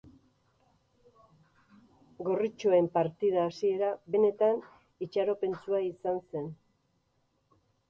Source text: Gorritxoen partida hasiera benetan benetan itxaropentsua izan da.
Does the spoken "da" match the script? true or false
false